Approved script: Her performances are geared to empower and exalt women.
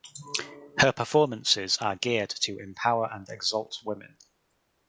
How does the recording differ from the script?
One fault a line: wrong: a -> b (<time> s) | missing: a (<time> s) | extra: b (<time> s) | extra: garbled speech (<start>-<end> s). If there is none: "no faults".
no faults